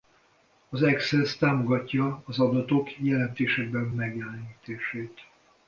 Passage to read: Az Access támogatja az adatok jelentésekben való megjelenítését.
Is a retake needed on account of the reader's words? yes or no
yes